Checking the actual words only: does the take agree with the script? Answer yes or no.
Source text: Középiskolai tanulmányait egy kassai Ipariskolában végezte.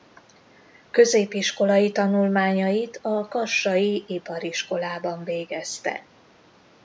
no